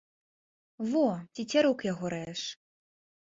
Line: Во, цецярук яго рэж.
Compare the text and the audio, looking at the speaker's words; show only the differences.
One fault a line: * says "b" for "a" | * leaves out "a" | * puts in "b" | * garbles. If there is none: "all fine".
all fine